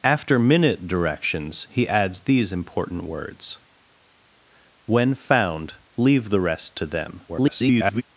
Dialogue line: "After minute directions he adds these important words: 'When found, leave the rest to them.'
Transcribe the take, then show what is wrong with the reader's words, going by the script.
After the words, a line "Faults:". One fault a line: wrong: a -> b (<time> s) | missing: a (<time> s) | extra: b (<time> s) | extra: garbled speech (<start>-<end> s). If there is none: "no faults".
"After minute directions he adds these important words: 'When found, leave the rest to them.' [garbled]
Faults:
extra: garbled speech (7.3-8.0 s)